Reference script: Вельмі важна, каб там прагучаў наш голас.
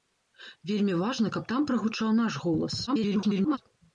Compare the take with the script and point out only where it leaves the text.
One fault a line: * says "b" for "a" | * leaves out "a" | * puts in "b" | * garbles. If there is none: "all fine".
* garbles